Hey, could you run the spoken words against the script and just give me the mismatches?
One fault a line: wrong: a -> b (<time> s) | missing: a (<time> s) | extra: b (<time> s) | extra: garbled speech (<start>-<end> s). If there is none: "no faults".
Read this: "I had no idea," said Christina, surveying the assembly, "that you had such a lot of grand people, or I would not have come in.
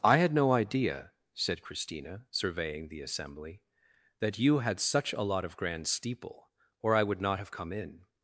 wrong: people -> steeple (5.9 s)